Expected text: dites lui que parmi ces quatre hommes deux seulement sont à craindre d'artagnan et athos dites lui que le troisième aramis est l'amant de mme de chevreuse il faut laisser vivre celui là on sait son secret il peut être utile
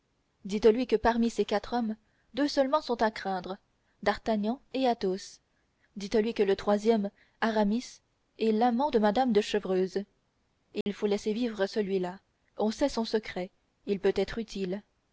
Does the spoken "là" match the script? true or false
true